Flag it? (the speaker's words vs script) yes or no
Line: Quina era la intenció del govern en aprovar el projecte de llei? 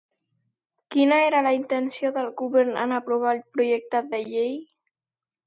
no